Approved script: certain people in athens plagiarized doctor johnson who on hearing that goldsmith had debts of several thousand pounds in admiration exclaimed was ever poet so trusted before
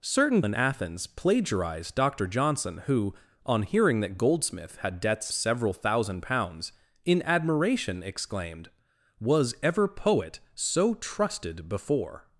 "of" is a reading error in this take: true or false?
true